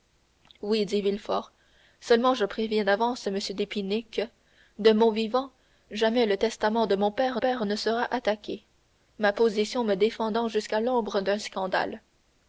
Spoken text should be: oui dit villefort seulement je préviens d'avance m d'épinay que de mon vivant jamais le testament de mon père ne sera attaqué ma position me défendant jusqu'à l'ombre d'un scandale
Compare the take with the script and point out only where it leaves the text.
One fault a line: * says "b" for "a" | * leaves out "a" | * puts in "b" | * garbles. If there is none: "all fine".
* puts in "père"